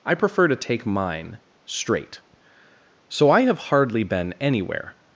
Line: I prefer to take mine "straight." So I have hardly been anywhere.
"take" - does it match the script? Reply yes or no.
yes